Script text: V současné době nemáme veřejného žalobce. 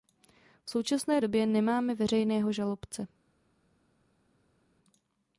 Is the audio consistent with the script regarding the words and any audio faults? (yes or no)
yes